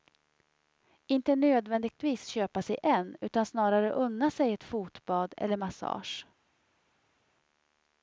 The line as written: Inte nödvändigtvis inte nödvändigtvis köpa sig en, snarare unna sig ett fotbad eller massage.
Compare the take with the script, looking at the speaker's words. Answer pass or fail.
fail